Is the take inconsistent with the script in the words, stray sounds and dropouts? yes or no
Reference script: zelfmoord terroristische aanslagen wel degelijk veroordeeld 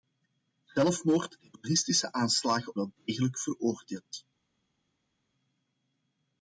no